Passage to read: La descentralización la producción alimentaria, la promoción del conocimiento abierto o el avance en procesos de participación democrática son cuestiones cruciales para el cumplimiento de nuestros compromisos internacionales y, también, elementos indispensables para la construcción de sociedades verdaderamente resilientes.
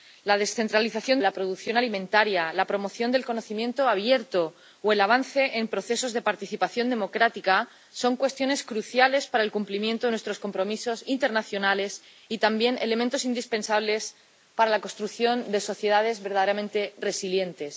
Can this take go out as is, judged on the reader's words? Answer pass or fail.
pass